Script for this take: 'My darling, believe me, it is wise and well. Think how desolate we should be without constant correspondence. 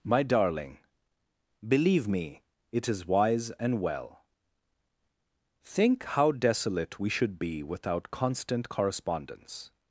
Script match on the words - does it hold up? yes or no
yes